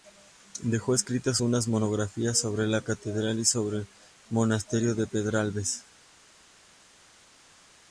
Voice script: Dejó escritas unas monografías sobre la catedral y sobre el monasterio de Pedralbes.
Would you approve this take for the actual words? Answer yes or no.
yes